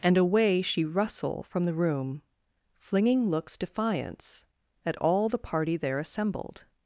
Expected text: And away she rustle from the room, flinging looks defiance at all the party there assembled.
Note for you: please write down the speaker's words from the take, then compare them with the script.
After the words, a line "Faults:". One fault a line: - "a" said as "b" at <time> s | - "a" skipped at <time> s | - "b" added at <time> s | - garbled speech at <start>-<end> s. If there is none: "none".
And away she rustle from the room, flinging looks defiance at all the party there assembled.
Faults:
none